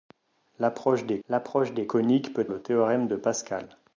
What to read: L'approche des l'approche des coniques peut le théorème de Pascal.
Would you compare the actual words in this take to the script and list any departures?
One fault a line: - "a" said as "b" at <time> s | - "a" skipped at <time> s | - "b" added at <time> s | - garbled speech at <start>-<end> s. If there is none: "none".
none